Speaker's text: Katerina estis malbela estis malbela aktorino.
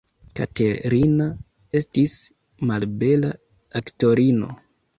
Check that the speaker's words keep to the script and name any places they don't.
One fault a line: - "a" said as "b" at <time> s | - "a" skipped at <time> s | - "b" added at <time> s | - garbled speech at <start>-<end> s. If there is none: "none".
- "estis malbela" skipped at 3.3 s